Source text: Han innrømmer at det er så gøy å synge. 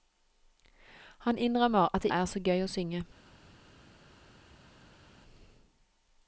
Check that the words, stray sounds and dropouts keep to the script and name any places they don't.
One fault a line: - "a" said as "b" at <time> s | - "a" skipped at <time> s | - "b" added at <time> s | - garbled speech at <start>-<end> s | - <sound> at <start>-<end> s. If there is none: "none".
none